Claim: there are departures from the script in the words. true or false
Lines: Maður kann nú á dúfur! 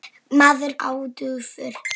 true